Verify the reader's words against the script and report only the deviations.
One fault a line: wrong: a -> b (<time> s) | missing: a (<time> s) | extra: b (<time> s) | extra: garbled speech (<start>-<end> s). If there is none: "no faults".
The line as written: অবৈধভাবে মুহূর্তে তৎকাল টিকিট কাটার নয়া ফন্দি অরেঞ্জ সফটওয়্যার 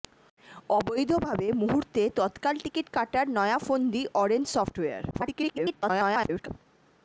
extra: garbled speech (5.1-6.5 s)